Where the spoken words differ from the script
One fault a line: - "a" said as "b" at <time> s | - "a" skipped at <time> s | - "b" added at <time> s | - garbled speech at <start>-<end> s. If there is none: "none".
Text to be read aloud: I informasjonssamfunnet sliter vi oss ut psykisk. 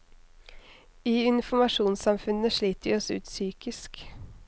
none